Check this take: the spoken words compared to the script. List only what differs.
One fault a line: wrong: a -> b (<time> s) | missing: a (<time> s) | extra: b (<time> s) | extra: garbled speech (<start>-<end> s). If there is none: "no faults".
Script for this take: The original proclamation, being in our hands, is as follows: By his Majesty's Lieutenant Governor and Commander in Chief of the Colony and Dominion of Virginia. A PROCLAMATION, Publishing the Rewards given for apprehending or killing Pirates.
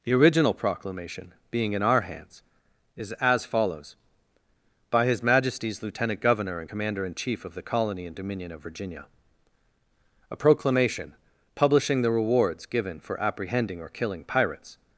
no faults